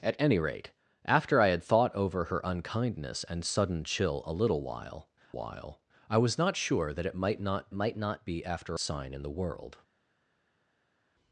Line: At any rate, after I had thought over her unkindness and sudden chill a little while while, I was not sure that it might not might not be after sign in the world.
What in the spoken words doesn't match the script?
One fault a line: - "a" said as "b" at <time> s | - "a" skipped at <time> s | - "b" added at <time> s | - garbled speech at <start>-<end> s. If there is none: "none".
none